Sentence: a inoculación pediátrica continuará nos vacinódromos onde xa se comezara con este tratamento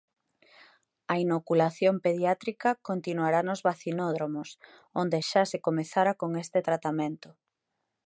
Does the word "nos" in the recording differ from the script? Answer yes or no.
no